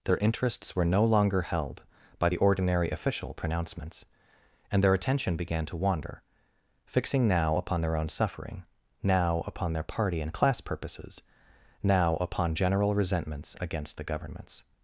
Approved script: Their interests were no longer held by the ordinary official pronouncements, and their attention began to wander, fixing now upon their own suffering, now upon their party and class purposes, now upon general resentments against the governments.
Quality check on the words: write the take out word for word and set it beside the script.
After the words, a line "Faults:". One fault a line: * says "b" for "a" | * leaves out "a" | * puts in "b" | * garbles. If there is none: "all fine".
Their interests were no longer held by the ordinary official pronouncements, and their attention began to wander, fixing now upon their own suffering, now upon their party and class purposes, now upon general resentments against the governments.
Faults:
all fine